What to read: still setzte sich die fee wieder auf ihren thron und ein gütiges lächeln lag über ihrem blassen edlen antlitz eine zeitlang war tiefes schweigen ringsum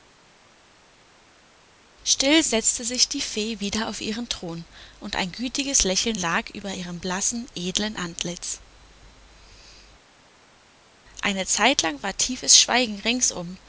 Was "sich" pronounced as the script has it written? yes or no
yes